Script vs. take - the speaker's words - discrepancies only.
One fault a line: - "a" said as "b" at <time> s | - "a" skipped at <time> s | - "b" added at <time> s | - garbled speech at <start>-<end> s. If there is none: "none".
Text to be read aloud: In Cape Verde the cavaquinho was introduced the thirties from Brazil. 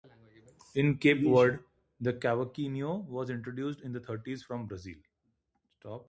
- "in" added at 3.8 s